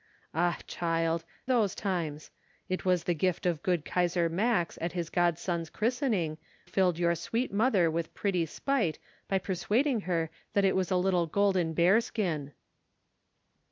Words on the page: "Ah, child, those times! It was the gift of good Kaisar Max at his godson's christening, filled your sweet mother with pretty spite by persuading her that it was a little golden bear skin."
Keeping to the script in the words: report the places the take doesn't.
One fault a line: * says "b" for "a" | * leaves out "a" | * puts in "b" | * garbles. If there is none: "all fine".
all fine